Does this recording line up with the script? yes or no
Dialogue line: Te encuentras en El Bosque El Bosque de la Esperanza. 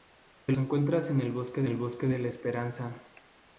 yes